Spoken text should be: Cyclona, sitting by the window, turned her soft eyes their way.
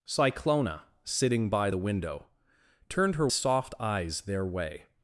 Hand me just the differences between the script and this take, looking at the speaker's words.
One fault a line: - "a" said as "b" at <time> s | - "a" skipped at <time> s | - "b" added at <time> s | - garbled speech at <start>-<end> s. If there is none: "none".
none